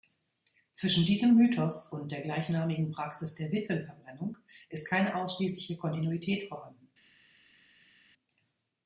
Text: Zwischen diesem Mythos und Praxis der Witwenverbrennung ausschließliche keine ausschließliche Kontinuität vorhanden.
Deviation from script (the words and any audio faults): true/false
true